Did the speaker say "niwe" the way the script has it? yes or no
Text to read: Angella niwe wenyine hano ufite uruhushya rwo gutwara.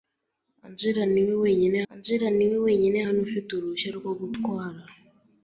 yes